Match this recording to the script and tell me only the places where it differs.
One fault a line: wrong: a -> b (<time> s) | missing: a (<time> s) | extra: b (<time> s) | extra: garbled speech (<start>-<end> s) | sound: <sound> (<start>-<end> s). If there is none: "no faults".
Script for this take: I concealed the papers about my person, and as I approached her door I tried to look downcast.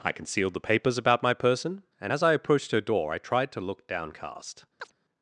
sound: chirp (4.8-4.9 s)